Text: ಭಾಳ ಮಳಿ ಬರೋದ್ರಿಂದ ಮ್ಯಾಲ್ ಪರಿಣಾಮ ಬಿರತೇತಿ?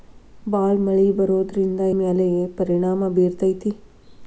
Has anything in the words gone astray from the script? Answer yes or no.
no